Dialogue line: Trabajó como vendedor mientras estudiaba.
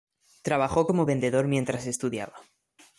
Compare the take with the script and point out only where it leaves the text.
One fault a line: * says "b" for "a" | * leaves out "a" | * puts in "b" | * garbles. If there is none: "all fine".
all fine